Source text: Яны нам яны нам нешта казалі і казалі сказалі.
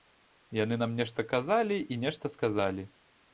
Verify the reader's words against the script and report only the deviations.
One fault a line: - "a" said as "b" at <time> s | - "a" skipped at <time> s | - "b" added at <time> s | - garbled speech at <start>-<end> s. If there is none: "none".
- "яны нам" skipped at 0.9 s
- "казалі" said as "нешта" at 2.0 s